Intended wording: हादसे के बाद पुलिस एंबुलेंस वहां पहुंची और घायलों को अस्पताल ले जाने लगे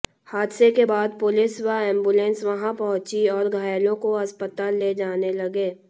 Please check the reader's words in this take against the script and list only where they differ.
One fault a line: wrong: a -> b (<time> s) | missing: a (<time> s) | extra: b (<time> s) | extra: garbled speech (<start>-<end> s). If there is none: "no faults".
extra: व (1.6 s)